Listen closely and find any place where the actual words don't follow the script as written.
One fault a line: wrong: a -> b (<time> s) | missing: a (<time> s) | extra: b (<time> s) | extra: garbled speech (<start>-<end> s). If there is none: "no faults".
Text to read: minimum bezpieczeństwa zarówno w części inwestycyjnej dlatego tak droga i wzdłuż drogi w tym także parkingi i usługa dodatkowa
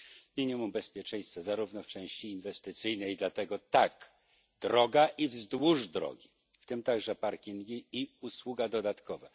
no faults